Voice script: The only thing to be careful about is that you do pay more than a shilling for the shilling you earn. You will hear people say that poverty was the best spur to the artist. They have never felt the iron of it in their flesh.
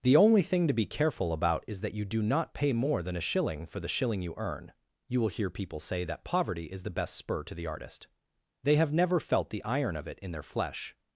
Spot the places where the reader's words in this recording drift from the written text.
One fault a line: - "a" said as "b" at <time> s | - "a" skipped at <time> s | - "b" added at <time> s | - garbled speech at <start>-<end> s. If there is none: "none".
- "not" added at 2.2 s
- "was" said as "is" at 6.7 s